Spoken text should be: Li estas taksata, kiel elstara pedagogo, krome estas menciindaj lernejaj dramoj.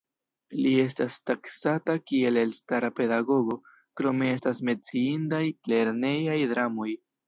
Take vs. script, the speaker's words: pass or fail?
pass